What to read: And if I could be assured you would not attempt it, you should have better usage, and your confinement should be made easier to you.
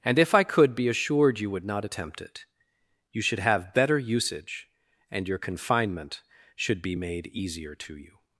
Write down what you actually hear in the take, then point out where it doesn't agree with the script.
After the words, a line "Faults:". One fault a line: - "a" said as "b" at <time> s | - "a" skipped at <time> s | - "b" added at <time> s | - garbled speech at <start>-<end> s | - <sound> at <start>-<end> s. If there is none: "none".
And if I could be assured you would not attempt it, you should have better usage, and your confinement should be made easier to you.
Faults:
none